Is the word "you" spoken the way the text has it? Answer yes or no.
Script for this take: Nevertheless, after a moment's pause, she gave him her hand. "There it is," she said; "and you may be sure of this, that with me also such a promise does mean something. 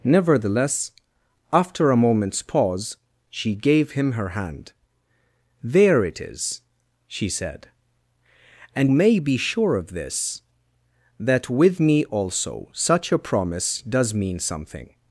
no